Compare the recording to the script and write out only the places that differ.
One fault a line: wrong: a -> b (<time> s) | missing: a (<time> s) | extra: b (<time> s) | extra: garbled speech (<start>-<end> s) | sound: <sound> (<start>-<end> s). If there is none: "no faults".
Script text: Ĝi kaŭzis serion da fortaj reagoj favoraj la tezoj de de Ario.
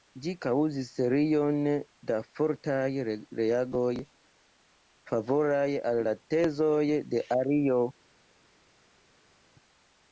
extra: al (5.9 s)
missing: de (7.3 s)